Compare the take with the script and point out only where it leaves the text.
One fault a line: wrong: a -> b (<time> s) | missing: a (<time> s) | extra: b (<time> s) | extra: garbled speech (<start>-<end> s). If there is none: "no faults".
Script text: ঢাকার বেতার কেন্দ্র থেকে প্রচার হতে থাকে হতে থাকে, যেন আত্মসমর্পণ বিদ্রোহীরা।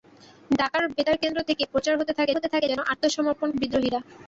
no faults